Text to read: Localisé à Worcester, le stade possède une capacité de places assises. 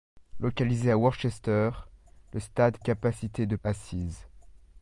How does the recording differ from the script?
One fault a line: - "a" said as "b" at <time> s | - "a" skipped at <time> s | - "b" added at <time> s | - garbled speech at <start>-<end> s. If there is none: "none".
- "possède une" skipped at 2.8 s
- "places" skipped at 3.6 s